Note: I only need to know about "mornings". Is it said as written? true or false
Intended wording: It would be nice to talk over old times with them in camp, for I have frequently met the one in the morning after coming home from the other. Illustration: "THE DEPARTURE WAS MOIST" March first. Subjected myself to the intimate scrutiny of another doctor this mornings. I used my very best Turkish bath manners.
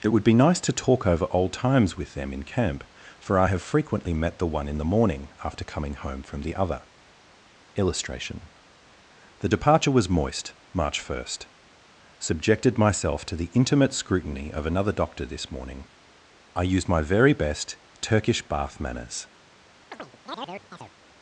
false